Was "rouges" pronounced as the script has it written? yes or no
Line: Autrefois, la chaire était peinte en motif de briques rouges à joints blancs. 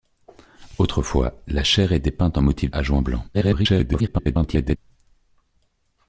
no